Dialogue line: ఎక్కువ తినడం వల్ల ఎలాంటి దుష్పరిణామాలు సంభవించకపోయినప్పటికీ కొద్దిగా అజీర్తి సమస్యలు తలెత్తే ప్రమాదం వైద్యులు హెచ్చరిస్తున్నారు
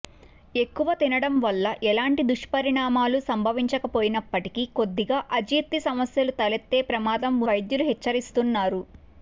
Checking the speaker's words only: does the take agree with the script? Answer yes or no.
yes